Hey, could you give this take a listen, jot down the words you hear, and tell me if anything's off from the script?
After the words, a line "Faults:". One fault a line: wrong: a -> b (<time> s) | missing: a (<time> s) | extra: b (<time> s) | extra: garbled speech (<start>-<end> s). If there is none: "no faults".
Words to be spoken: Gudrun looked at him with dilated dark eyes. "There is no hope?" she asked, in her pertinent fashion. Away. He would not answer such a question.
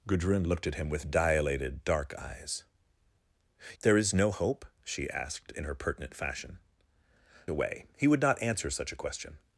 Gudrun looked at him with dilated dark eyes. "There is no hope?" she asked, in her pertinent fashion. Away. He would not answer such a question.
Faults:
no faults